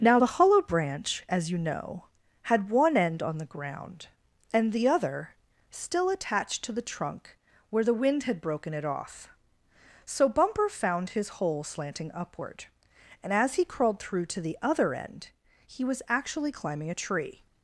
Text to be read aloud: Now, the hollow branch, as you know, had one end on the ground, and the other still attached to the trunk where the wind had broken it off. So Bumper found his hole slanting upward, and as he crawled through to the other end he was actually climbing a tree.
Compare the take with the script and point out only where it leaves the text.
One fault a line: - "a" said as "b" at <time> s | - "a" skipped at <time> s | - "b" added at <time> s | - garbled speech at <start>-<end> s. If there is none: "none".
none